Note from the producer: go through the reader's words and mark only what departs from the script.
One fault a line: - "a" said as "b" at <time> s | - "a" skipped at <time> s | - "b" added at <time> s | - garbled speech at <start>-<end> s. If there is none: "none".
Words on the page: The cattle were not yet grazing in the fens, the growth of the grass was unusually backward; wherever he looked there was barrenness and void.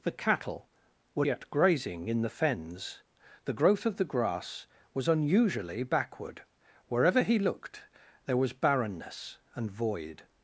- "not" skipped at 1.2 s